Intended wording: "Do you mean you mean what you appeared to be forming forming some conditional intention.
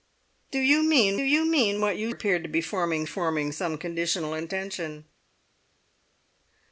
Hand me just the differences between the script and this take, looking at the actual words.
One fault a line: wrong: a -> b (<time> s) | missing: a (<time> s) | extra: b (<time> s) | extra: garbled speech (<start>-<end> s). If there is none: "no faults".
no faults